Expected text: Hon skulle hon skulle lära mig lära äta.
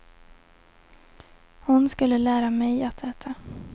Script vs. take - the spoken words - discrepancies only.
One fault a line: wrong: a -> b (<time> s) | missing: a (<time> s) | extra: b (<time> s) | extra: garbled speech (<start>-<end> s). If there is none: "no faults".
missing: hon skulle (2.2 s)
wrong: lära -> att (2.8 s)